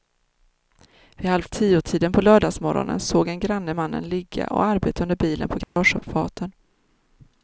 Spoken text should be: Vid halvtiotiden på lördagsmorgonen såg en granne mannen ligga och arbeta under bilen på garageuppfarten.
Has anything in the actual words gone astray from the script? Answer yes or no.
no